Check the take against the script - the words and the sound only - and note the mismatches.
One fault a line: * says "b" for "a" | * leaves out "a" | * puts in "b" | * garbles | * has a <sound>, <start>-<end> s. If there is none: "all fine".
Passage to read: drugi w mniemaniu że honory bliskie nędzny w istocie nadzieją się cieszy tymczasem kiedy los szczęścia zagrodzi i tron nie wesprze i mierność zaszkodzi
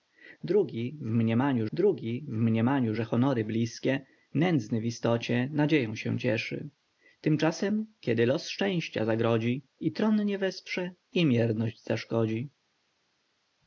* puts in "drugi w mniemaniu"